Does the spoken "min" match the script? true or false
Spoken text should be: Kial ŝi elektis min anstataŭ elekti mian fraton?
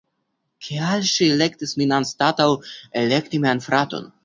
true